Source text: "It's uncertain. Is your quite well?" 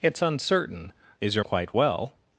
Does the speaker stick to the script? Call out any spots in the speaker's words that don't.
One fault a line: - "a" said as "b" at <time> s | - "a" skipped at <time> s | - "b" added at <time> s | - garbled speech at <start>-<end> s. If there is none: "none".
none